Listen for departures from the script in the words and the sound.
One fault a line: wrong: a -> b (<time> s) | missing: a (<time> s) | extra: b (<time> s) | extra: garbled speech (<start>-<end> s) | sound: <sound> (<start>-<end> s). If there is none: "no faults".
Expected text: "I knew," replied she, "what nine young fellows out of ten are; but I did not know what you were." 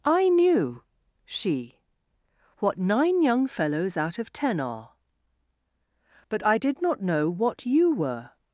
missing: replied (0.8 s)